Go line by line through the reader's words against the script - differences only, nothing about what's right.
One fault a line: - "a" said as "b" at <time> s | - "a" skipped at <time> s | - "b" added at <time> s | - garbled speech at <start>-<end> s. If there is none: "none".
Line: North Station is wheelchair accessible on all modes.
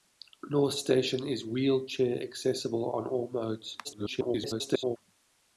- garbled speech at 3.8-5.0 s